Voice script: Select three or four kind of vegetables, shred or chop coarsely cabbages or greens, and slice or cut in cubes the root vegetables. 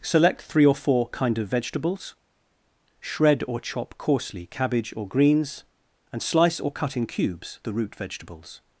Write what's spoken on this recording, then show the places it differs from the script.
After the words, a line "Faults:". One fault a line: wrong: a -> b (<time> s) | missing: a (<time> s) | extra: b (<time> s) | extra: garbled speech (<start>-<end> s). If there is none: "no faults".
Select three or four kind of vegetables, shred or chop coarsely cabbage or greens, and slice or cut in cubes the root vegetables.
Faults:
wrong: cabbages -> cabbage (4.5 s)